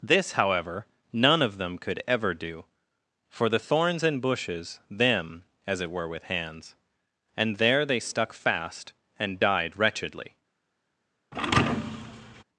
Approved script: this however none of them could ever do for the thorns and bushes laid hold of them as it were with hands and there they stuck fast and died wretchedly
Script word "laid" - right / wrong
wrong